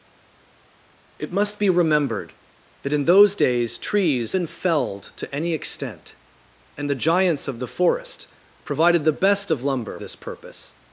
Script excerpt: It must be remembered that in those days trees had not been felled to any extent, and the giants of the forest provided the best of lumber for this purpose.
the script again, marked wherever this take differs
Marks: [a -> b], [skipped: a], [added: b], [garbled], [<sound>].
It must be remembered that in those days trees [skipped: had not] been felled to any extent, and the giants of the forest provided the best of lumber [skipped: for] this purpose.